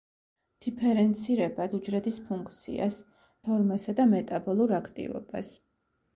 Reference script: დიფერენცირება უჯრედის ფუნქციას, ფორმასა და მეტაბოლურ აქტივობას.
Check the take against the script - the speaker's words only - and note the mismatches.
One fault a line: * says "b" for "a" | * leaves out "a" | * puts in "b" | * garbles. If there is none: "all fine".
all fine